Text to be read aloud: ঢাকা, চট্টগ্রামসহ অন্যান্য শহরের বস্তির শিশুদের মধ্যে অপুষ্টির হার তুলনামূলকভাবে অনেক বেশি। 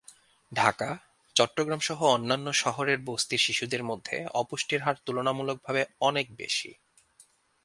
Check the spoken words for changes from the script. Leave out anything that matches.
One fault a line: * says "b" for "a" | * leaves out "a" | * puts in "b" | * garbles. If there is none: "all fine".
all fine